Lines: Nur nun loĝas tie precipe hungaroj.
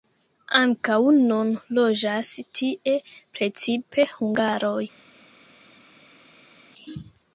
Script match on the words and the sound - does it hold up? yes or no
no